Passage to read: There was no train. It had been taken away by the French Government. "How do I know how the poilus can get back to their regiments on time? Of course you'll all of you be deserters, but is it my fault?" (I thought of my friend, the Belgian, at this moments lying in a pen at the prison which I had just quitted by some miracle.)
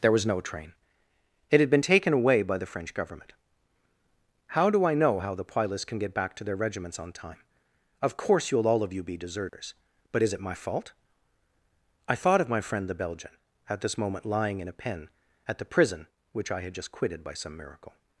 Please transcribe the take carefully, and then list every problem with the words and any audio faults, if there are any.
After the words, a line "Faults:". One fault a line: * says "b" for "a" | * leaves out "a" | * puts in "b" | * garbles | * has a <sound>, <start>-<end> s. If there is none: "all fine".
There was no train. It had been taken away by the French Government. "How do I know how the poilus can get back to their regiments on time? Of course you'll all of you be deserters, but is it my fault?" (I thought of my friend, the Belgian, at this moment lying in a pen at the prison which I had just quitted by some miracle.)
Faults:
* has a dropout, 9.5-9.5 s
* says "moment" for "moments"